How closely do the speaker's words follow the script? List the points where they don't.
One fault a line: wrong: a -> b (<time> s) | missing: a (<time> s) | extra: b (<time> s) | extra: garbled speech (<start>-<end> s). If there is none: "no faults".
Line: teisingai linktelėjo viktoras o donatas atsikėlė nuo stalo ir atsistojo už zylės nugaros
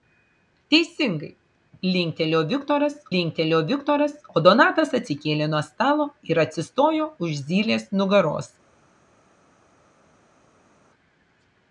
extra: linktelėjo viktoras (3.1 s)